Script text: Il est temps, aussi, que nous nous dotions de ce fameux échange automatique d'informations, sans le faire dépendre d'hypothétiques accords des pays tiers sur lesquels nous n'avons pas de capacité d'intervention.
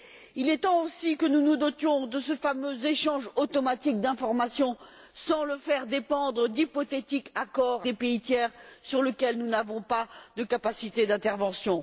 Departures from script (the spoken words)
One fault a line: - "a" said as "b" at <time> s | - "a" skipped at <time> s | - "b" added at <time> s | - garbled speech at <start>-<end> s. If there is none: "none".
none